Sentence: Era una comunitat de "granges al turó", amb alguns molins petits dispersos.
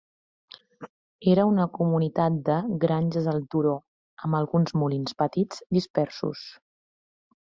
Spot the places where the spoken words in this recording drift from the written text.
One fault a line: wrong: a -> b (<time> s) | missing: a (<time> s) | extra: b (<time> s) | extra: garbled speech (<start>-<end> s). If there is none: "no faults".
no faults